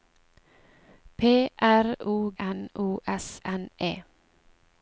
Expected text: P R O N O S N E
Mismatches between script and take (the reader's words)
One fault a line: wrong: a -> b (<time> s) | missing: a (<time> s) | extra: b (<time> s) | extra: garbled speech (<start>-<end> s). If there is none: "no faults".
no faults